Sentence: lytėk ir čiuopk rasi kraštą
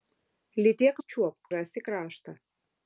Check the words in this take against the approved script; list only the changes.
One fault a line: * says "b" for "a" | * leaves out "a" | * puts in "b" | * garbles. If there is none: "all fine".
all fine